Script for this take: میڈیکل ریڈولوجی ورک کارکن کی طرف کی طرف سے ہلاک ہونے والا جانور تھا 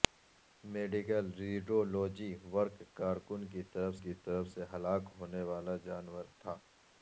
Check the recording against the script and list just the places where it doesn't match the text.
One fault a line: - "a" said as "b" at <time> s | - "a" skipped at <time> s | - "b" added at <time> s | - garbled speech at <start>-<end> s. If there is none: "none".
none